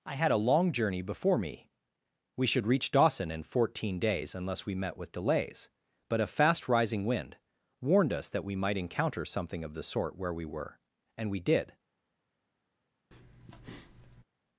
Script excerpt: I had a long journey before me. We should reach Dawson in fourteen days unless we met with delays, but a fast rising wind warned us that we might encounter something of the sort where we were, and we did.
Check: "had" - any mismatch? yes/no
no